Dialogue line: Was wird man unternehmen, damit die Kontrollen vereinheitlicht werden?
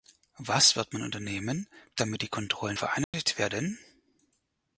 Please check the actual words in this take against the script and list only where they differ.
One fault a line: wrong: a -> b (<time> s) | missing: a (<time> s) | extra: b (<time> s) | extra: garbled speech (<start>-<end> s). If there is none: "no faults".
no faults